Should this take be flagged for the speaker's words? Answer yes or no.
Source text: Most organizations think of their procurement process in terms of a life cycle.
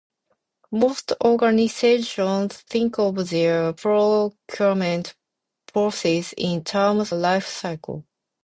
yes